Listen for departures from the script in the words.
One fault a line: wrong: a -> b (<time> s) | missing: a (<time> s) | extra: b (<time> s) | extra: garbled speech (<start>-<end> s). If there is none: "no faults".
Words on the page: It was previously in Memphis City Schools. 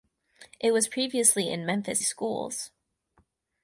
missing: City (2.0 s)